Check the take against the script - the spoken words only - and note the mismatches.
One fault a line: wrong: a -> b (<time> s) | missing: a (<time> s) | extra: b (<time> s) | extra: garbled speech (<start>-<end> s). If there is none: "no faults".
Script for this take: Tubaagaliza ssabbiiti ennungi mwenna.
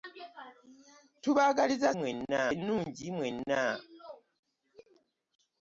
wrong: ssabbiiti -> mwenna (2.0 s)